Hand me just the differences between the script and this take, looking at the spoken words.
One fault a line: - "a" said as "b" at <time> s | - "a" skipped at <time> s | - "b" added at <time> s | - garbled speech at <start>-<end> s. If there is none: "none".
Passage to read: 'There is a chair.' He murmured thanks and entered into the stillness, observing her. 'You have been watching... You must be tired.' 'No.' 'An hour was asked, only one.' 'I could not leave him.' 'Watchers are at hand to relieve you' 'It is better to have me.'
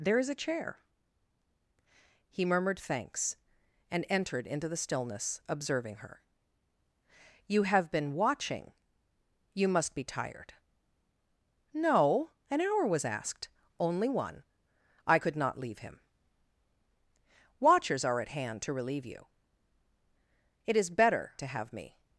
none